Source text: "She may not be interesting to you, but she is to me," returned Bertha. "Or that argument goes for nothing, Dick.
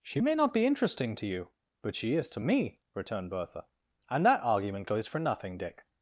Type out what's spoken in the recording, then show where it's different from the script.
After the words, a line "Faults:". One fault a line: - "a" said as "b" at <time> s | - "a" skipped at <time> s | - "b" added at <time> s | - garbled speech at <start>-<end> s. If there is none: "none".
"She may not be interesting to you, but she is to me," returned Bertha. "And that argument goes for nothing, Dick.
Faults:
- "Or" said as "And" at 4.1 s